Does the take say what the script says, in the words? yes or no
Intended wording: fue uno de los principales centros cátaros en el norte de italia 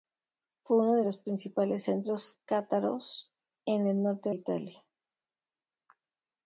no